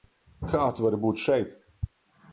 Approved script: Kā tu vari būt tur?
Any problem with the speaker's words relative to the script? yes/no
yes